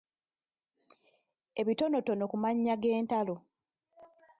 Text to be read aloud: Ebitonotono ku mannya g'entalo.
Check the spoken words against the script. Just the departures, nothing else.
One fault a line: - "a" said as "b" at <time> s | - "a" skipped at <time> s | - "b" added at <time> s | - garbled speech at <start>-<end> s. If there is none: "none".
none